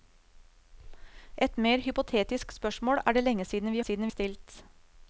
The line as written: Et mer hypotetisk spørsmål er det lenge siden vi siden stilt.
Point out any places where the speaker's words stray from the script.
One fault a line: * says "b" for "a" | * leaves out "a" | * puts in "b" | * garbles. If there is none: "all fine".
all fine